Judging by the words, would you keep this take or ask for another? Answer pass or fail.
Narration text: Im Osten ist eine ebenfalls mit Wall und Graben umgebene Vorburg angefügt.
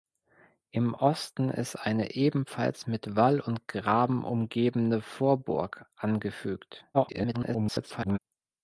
fail